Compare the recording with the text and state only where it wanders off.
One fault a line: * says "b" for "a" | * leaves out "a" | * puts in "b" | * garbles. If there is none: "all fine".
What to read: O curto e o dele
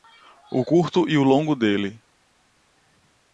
* puts in "longo"